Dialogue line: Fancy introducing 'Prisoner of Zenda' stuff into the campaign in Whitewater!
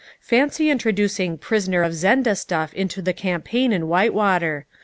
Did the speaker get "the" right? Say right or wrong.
right